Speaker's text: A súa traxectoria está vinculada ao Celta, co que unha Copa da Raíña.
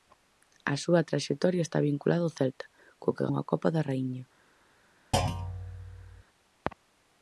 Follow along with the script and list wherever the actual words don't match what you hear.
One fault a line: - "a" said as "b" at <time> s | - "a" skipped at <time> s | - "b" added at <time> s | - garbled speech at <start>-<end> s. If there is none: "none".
none